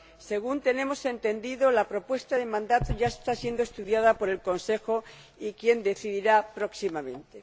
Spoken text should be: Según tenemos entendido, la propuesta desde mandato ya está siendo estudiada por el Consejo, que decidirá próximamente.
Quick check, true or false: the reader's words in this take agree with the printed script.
false